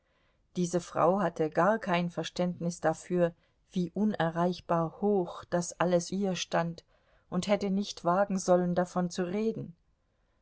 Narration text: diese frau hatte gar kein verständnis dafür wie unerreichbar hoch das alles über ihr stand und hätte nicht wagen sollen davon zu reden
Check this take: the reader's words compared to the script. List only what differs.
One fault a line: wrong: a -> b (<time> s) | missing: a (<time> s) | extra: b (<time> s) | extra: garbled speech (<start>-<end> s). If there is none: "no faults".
missing: über (6.1 s)